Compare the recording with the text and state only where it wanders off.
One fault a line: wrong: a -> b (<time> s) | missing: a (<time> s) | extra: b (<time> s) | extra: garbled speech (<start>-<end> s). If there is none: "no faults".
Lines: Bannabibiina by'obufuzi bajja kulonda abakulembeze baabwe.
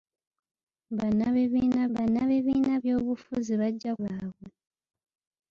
extra: bannabibiina (1.9 s)
missing: kulonda abakulembeze (3.9 s)